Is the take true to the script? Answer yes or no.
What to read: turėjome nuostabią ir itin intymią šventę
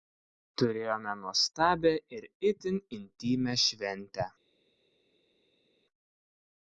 yes